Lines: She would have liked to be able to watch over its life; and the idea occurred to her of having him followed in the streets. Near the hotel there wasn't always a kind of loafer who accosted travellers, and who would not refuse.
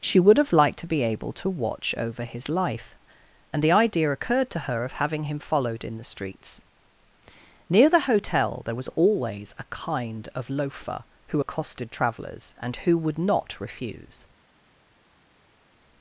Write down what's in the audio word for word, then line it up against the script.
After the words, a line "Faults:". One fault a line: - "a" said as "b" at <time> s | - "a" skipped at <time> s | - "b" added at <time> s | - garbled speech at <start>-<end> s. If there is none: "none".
She would have liked to be able to watch over his life; and the idea occurred to her of having him followed in the streets. Near the hotel there was always a kind of loafer who accosted travellers, and who would not refuse.
Faults:
- "its" said as "his" at 2.2 s
- "wasn't" said as "was" at 8.8 s